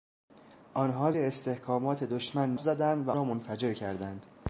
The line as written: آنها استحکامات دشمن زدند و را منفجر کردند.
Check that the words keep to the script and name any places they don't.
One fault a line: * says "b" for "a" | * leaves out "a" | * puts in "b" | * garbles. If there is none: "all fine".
all fine